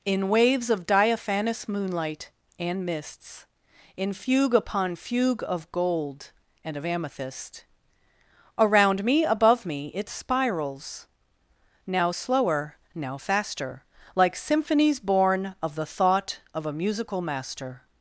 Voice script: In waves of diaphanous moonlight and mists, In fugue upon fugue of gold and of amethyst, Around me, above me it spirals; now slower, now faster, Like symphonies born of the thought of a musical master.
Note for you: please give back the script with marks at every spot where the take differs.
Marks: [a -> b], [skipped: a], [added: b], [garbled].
In waves of diaphanous moonlight and mists, In fugue upon fugue of gold and of amethyst, Around me, above me it spirals; now slower, now faster, Like symphonies born of the thought of a musical master.